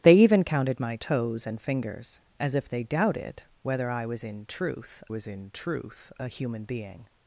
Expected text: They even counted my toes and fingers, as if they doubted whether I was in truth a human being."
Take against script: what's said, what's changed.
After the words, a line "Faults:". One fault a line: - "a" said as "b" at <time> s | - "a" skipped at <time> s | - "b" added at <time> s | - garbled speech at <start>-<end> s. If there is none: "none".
They even counted my toes and fingers, as if they doubted whether I was in truth was in truth a human being."
Faults:
- "was in truth" added at 5.1 s